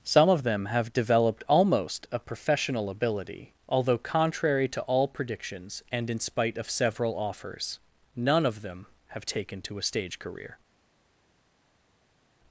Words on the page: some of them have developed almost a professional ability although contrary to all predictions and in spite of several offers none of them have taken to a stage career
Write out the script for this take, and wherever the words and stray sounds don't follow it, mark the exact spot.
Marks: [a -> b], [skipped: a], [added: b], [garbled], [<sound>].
some of them have developed almost a professional ability although contrary to all predictions and in spite of several offers none of them have taken to a stage career